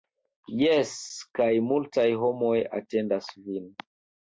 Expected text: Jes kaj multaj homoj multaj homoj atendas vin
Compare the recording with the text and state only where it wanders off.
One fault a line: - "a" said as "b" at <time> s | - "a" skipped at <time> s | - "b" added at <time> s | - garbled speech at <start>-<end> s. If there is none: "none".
- "multaj homoj" skipped at 2.6 s